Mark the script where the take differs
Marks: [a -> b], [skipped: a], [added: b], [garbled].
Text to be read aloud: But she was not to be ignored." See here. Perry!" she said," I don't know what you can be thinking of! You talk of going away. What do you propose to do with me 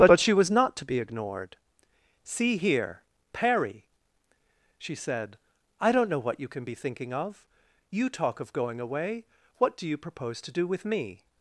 But [added: but] she was not to be ignored." See here. Perry!" she said," I don't know what you can be thinking of! You talk of going away. What do you propose to do with me